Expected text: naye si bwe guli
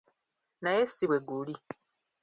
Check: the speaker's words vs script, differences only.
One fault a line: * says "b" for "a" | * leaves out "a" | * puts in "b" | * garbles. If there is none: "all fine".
all fine